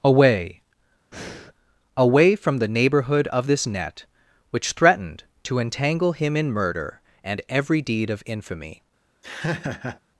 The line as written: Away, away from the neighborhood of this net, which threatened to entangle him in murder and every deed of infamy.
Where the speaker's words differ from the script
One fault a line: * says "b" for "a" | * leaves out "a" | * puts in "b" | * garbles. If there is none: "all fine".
all fine